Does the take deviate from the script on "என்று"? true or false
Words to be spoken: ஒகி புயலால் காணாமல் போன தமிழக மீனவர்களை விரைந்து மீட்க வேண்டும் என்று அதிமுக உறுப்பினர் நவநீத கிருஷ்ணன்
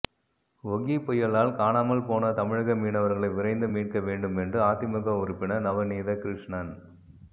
false